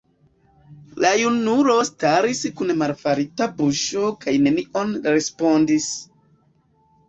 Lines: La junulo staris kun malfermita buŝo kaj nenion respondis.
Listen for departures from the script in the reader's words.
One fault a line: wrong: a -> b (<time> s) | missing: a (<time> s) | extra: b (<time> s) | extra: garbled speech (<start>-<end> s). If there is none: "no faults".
no faults